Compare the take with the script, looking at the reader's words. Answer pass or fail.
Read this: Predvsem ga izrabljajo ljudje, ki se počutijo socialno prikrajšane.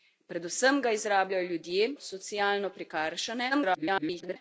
fail